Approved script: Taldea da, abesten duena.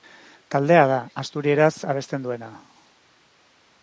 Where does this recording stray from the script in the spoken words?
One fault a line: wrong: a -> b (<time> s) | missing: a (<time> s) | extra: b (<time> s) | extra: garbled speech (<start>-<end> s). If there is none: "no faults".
extra: asturieraz (1.2 s)